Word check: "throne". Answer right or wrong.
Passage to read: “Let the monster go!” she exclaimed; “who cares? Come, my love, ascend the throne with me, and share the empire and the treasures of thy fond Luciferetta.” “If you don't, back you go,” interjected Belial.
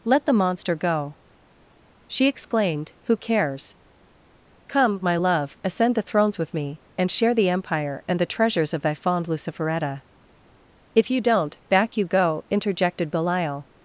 wrong